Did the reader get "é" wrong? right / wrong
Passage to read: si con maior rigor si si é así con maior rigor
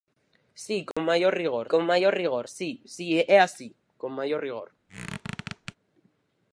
right